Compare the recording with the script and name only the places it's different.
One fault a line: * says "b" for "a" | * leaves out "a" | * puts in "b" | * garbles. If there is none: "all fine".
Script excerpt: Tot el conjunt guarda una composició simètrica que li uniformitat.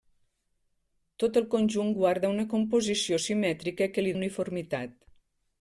all fine